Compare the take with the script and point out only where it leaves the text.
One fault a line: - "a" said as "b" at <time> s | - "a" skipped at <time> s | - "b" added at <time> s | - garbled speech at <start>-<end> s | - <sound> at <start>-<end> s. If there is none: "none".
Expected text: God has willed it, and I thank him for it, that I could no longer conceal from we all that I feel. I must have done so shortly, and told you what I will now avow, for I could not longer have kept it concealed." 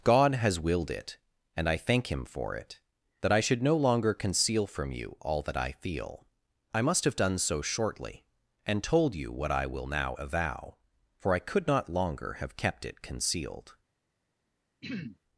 - "could" said as "should" at 3.4 s
- "we" said as "you" at 4.9 s
- throat clearing at 14.8-15.2 s